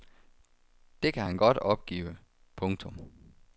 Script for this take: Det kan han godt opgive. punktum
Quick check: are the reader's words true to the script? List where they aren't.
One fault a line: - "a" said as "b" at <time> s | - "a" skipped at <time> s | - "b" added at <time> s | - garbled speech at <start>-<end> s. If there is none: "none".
none